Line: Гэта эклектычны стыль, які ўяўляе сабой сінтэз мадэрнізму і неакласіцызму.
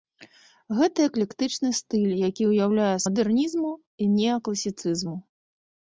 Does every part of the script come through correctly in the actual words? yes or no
no